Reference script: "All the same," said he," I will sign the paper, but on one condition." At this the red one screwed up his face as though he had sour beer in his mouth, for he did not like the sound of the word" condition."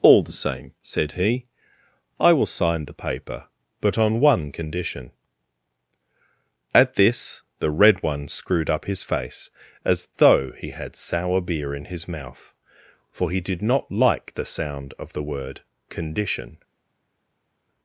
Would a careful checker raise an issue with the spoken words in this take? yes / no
no